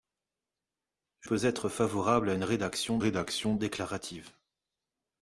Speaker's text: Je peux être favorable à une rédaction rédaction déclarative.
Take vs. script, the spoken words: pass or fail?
pass